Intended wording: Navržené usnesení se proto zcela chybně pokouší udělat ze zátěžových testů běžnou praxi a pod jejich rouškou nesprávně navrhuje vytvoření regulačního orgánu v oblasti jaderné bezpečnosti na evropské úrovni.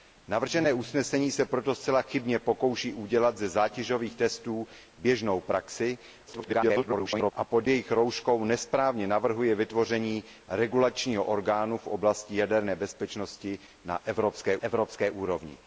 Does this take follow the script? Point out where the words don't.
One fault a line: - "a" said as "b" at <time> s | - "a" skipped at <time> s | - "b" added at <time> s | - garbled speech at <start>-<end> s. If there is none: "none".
- garbled speech at 6.3-7.3 s
- "evropské" added at 14.6 s